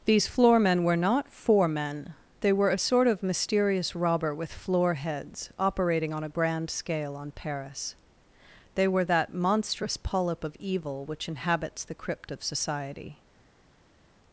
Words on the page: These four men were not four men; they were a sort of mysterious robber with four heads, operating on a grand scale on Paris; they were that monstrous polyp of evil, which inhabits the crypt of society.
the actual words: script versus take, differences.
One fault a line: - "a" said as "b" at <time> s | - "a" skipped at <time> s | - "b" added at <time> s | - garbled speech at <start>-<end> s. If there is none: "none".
- "four" said as "floor" at 0.3 s
- "four" said as "floor" at 4.5 s